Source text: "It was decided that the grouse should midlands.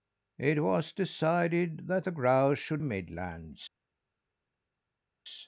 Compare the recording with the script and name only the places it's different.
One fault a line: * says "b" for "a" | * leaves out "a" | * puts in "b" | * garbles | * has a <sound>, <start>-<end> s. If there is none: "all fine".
all fine